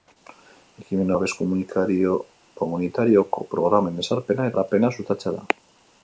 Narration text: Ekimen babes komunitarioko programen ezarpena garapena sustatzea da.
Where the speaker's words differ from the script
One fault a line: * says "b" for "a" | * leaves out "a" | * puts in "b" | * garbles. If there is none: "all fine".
all fine